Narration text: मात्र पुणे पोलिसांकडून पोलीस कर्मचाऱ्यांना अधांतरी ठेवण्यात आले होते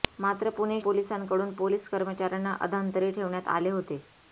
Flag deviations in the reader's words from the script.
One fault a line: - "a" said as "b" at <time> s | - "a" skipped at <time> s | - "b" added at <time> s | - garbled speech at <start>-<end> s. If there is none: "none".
none